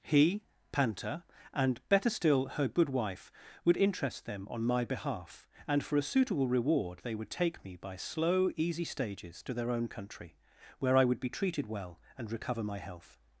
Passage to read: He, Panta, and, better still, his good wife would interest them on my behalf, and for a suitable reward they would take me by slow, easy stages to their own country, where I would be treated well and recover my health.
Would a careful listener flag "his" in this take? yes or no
yes